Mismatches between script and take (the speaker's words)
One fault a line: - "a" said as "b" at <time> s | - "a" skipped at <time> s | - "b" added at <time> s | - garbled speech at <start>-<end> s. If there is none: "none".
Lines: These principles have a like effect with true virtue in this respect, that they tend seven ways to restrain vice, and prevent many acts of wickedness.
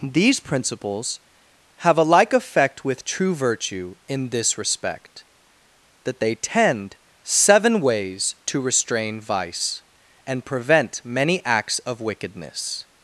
none